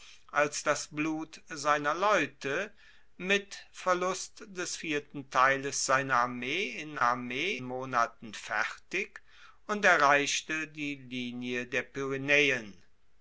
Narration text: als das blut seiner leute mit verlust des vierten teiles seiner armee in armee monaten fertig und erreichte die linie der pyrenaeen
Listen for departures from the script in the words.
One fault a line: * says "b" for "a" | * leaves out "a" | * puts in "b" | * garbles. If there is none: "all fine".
all fine